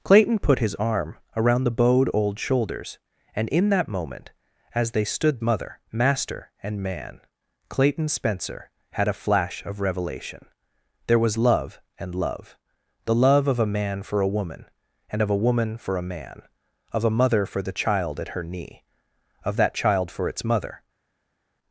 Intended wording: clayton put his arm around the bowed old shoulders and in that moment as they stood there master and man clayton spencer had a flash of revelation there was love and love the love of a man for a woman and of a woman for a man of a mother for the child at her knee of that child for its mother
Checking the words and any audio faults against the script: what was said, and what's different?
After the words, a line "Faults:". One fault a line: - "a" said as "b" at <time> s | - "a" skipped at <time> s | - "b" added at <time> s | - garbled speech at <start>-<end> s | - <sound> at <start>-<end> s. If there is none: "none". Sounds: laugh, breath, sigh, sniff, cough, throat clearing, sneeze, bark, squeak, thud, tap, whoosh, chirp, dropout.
clayton put his arm around the bowed old shoulders and in that moment as they stood mother master and man clayton spencer had a flash of revelation there was love and love the love of a man for a woman and of a woman for a man of a mother for the child at her knee of that child for its mother
Faults:
- "there" said as "mother" at 5.4 s